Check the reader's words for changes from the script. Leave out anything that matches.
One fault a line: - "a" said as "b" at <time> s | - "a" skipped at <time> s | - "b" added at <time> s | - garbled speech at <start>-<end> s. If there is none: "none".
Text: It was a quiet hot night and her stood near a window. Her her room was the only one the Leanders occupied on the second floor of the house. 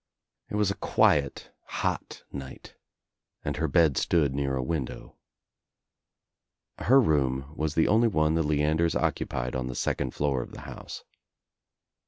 - "bed" added at 3.7 s
- "her" skipped at 7.0 s